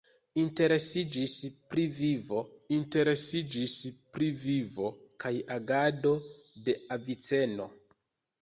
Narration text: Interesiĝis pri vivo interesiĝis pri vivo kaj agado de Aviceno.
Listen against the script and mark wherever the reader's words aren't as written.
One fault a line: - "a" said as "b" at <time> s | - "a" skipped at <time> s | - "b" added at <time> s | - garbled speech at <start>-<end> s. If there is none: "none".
none